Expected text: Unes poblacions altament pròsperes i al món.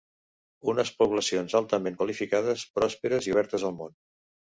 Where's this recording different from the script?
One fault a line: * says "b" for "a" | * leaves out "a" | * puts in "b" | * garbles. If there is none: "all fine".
* puts in "qualificades"
* puts in "obertes"